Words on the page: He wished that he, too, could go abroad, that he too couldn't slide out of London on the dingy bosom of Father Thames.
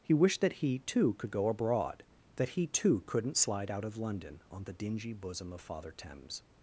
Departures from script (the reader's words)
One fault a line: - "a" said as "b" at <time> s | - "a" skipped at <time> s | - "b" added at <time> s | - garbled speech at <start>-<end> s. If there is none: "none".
none